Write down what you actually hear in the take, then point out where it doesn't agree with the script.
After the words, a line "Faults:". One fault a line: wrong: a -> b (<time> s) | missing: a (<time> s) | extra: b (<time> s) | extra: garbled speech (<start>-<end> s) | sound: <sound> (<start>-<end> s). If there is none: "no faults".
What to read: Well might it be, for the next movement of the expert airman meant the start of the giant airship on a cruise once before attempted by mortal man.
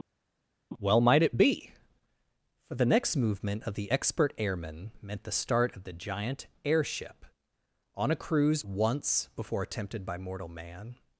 Well might it be, for the next movement of the expert airman meant the start of the giant airship on a cruise once before attempted by mortal man.
Faults:
no faults